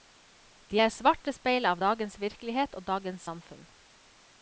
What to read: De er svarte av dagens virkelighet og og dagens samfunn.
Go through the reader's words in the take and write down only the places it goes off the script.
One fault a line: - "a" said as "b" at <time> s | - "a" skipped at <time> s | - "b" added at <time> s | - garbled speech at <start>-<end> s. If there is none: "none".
- "speil" added at 1.3 s
- "og" skipped at 2.9 s